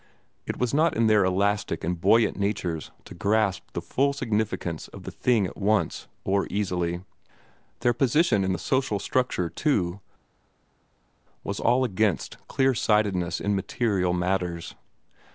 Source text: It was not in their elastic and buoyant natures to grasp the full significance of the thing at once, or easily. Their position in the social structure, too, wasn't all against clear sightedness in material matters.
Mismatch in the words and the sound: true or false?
true